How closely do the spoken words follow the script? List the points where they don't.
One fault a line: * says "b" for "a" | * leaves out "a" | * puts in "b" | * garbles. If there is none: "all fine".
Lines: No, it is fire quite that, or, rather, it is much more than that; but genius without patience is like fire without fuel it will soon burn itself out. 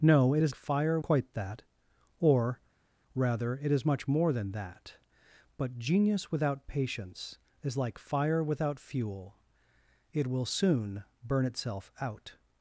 all fine